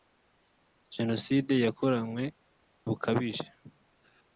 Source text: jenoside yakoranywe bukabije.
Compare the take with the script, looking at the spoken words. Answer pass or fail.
pass